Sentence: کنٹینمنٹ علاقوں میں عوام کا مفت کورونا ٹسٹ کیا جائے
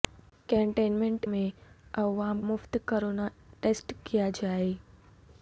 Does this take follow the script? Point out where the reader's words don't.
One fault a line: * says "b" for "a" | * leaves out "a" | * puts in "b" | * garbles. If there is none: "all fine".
* leaves out "علاقوں"
* leaves out "کا"